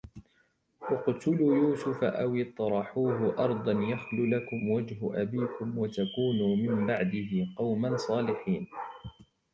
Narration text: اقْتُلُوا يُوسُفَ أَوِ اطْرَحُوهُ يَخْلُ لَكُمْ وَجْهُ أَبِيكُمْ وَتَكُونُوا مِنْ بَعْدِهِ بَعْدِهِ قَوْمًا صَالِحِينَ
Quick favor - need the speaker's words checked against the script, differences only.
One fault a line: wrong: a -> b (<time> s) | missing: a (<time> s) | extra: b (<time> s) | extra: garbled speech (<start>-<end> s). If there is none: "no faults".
extra: أَرْضًا (3.5 s)
missing: بَعْدِهِ (7.5 s)